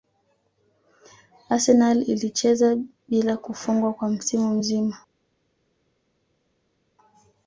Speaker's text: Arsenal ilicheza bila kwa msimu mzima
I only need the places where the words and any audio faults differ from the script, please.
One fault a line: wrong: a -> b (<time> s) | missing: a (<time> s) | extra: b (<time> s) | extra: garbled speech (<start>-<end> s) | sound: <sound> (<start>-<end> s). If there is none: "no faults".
extra: kufungwa (3.4 s)